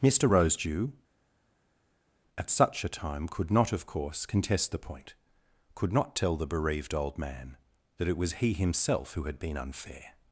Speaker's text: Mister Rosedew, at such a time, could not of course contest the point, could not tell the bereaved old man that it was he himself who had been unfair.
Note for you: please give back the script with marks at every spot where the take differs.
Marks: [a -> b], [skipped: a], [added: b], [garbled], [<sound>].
Mister Rosedew, at such a time, could not of course contest the point, could not tell the bereaved old man that it was he himself who had been unfair.